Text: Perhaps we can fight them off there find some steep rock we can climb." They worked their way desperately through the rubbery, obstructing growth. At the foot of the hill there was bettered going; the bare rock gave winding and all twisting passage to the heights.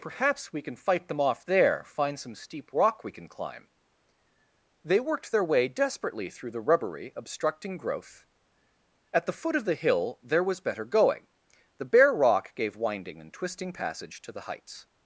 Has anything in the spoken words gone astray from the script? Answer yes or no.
yes